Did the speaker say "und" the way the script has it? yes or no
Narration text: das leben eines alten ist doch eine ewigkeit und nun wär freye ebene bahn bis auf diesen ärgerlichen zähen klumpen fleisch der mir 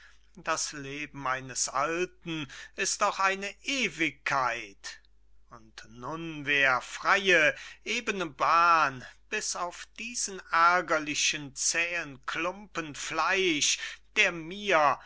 yes